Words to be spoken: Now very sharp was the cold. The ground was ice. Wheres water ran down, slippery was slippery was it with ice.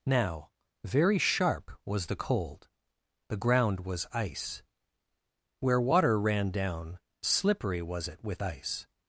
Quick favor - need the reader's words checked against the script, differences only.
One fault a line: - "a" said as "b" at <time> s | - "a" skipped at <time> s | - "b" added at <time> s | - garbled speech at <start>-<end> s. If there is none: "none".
- "Wheres" said as "Where" at 5.6 s
- "slippery was" skipped at 8.1 s